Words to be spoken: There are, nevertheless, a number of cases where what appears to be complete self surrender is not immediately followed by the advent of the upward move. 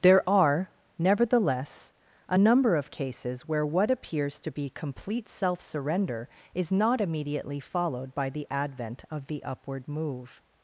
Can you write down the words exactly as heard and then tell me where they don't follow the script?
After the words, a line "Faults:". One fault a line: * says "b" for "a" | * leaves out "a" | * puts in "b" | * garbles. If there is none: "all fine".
There are, nevertheless, a number of cases where what appears to be complete self surrender is not immediately followed by the advent of the upward move.
Faults:
all fine